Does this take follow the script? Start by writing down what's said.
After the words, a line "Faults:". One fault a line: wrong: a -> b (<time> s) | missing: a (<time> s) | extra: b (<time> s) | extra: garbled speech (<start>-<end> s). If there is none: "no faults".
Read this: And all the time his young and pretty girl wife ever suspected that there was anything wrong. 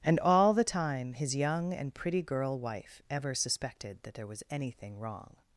And all the time his young and pretty girl wife ever suspected that there was anything wrong.
Faults:
no faults